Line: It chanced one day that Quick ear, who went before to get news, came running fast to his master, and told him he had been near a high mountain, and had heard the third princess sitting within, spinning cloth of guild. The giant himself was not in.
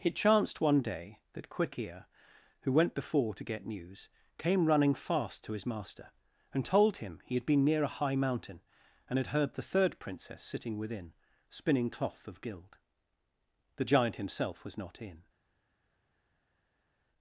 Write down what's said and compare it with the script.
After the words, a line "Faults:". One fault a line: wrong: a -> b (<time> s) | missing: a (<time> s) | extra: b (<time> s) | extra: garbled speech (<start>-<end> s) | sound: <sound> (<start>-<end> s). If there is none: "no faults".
It chanced one day that Quick ear, who went before to get news, came running fast to his master, and told him he had been near a high mountain, and had heard the third princess sitting within, spinning cloth of guild. The giant himself was not in.
Faults:
no faults